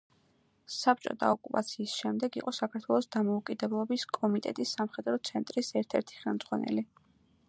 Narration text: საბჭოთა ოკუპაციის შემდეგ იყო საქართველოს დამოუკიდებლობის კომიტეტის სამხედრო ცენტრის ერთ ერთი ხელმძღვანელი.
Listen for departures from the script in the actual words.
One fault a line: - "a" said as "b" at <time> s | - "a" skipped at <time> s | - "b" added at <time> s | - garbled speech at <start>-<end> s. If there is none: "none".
none